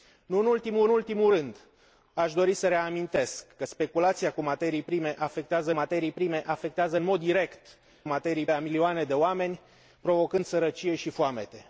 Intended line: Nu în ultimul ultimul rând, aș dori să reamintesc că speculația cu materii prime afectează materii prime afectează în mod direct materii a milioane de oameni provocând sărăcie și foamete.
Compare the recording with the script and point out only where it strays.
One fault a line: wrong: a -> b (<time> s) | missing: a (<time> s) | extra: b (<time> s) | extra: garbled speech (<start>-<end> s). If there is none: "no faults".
no faults